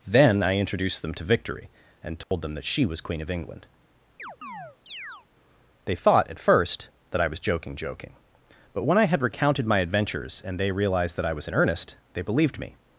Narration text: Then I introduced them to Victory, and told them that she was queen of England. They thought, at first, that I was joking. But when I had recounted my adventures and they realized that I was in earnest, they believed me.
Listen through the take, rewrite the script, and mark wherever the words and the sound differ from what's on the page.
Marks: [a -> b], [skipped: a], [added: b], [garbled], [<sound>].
Then I introduced them to Victory, and told [dropout] them that she was queen of England. [chirp] They thought, at first, that I was joking. [added: joking] But when I had recounted my adventures and they realized that I was in earnest, they believed me.